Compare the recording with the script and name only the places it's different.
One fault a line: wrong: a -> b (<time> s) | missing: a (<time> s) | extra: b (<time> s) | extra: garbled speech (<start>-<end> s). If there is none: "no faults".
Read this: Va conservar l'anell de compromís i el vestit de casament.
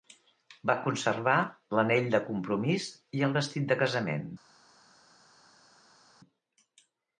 no faults